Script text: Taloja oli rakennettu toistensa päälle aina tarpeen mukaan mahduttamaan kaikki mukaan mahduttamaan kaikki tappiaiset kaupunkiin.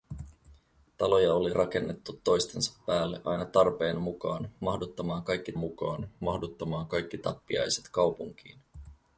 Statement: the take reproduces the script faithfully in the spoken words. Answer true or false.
true